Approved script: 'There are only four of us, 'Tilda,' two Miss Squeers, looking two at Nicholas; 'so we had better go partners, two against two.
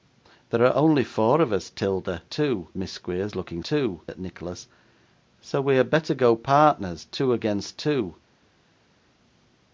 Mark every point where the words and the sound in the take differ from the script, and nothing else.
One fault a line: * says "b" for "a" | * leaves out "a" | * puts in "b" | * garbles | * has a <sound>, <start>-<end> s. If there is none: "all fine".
all fine